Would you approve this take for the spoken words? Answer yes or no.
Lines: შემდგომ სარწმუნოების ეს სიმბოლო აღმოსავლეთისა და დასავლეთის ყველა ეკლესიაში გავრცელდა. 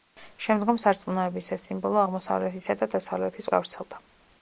no